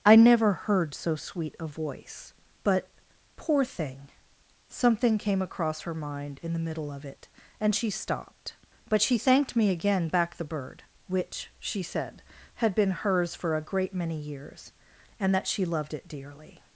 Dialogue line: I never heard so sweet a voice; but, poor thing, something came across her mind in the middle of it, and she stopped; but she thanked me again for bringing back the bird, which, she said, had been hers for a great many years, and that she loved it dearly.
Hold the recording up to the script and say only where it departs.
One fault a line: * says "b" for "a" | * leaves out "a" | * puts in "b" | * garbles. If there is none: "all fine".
* leaves out "for bringing"